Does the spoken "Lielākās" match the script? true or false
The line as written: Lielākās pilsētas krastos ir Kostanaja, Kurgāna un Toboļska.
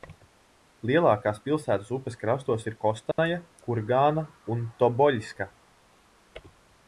true